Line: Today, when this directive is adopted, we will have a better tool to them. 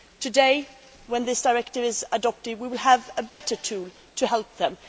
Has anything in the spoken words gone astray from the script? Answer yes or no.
yes